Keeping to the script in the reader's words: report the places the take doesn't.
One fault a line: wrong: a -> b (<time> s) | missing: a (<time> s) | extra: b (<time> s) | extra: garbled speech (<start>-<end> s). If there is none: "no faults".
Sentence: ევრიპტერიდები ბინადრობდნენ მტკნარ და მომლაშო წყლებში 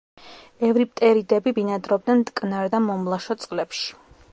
no faults